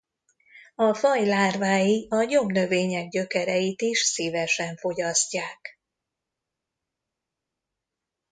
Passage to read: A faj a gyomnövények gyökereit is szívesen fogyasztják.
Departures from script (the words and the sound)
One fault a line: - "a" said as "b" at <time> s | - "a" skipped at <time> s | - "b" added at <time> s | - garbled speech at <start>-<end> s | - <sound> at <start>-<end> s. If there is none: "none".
- "lárvái" added at 1.2 s